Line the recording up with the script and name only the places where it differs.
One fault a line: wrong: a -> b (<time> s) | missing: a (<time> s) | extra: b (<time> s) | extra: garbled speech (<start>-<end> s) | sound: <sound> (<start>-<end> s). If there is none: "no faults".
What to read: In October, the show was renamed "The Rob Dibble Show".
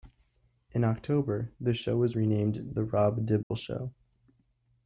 sound: dropout (3.4-3.5 s)